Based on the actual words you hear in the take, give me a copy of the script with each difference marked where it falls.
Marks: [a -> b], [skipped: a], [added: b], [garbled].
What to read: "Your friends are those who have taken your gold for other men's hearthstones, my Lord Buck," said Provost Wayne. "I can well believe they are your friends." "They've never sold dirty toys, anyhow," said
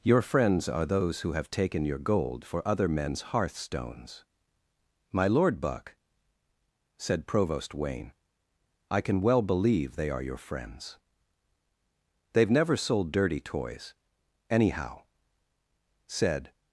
"Your friends are those who have taken your gold for other men's hearthstones, my Lord Buck," said Provost Wayne. "I can well believe they are your friends." "They've never sold dirty toys, anyhow," said